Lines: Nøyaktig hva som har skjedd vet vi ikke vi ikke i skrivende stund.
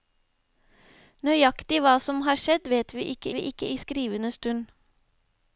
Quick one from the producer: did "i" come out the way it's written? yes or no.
yes